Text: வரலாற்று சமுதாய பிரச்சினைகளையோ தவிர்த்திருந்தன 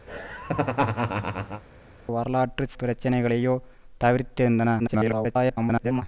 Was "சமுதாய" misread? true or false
true